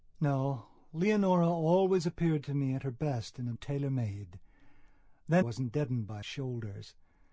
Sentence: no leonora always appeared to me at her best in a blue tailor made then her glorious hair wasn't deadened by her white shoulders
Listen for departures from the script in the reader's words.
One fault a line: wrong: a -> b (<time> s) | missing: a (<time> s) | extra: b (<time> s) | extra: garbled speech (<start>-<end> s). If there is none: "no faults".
missing: blue (3.5 s)
missing: her glorious hair (5.4 s)
missing: her white (6.2 s)